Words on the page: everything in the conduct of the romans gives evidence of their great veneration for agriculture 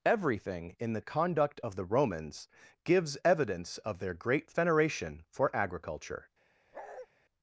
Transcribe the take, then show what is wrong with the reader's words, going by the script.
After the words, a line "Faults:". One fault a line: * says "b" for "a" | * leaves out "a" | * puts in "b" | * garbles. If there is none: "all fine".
everything in the conduct of the romans gives evidence of their great veneration for agriculture
Faults:
all fine